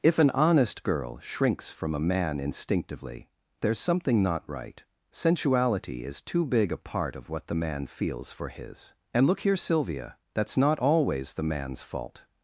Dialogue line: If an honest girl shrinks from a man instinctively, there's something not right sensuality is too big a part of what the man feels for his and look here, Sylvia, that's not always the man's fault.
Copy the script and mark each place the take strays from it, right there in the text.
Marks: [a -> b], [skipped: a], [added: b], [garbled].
If an honest girl shrinks from a man instinctively, there's something not right sensuality is too big a part of what the man feels for his and look here, Sylvia, that's not always the man's fault.